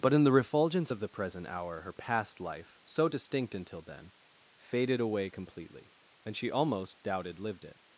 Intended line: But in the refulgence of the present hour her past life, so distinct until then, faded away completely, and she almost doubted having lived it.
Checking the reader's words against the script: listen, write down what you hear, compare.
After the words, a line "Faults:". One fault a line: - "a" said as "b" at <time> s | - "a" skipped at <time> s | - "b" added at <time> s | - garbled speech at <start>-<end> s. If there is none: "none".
But in the refulgence of the present hour her past life, so distinct until then, faded away completely, and she almost doubted lived it.
Faults:
- "having" skipped at 7.4 s